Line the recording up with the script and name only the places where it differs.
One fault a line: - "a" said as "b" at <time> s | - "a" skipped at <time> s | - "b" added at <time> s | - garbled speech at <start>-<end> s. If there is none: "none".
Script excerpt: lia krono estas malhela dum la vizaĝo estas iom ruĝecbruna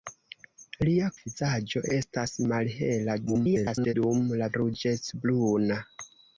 - "krono" said as "vizaĝo" at 1.2 s
- garbled speech at 3.3-3.9 s
- "vizaĝo estas iom" skipped at 4.5 s